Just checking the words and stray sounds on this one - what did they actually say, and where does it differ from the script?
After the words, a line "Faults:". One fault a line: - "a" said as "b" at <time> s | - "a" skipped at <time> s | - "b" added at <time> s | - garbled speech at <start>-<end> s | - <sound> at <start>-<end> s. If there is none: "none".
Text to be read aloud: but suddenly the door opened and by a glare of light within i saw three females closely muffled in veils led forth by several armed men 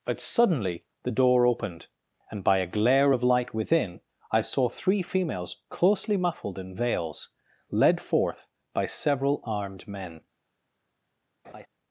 but suddenly the door opened and by a glare of light within i saw three females closely muffled in veils led forth by several armed men
Faults:
- laugh at 11.4-11.7 s